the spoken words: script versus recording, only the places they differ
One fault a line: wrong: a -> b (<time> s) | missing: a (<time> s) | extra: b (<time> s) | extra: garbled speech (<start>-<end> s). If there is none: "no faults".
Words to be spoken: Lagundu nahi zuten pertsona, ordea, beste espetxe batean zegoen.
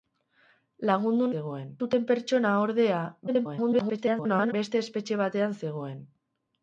wrong: nahi -> zegoen (1.3 s)
extra: garbled speech (3.3-4.5 s)